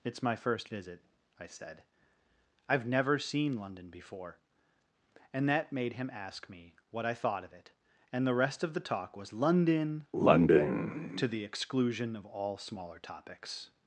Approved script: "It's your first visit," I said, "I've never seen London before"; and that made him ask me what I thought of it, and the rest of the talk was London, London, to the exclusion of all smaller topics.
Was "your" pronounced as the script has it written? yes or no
no